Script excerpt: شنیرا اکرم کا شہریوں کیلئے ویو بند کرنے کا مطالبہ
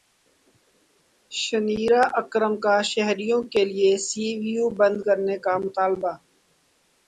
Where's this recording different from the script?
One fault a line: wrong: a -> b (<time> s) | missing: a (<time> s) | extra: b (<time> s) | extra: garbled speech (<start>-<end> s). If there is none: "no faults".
extra: سی (4.1 s)